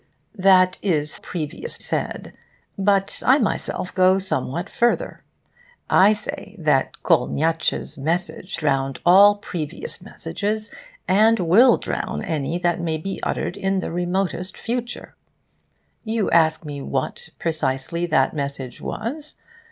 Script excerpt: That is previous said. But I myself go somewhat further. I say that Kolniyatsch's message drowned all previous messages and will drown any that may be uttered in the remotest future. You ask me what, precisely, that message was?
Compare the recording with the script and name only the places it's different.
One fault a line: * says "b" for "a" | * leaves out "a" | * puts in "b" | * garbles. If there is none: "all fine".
all fine